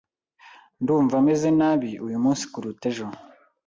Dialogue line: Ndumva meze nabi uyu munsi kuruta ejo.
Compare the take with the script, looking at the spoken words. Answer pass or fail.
pass